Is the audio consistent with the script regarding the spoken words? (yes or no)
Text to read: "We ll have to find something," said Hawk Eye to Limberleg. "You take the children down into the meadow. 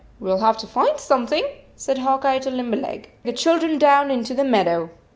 no